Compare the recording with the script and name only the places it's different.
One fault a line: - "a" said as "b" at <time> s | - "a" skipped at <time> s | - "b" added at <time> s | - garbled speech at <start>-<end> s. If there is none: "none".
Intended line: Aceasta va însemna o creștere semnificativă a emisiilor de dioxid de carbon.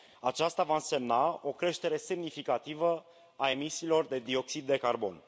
none